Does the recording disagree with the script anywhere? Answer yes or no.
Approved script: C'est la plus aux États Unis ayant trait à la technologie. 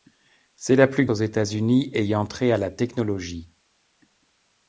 no